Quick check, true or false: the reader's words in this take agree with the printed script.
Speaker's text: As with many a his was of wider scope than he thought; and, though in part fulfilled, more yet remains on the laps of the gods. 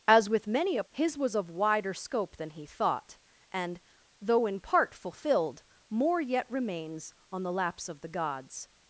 true